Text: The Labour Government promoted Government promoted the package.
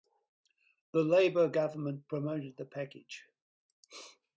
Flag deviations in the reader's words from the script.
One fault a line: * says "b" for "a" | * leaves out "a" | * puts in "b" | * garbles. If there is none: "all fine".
* leaves out "Government promoted"